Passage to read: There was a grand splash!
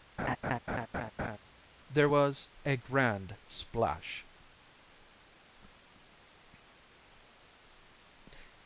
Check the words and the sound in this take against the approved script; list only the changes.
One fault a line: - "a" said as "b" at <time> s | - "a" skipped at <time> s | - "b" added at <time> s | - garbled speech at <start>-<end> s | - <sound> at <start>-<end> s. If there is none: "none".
- laugh at 0.2-1.4 s